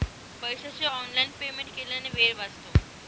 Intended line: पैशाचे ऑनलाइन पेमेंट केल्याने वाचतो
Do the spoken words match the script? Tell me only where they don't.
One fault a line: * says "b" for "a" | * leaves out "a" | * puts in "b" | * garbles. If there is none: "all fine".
* puts in "वेळ"